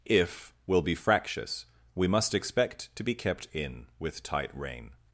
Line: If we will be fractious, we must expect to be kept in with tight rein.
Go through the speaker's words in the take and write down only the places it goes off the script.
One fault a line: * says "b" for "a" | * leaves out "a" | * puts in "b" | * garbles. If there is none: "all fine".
* leaves out "we"